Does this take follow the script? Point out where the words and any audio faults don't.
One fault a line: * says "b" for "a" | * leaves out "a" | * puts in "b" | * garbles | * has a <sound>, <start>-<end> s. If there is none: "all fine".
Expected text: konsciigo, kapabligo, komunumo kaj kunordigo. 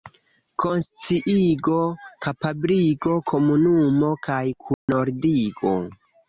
* has a dropout, 4.7-4.9 s